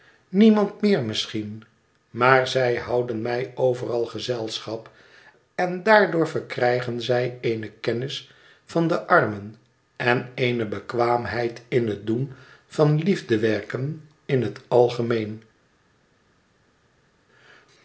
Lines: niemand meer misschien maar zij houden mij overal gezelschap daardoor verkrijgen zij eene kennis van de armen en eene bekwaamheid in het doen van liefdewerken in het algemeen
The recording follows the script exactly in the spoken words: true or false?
false